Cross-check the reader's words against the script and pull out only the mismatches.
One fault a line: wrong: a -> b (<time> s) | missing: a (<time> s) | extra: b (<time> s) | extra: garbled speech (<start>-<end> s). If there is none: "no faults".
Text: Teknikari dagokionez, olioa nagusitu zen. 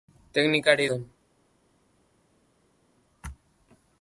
missing: dagokionez olioa nagusitu (0.9 s)